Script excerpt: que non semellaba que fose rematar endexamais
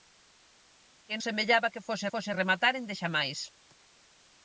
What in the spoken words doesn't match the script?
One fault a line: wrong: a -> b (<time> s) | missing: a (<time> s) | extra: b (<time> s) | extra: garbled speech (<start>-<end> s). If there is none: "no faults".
missing: non (1.1 s)
extra: fose (2.1 s)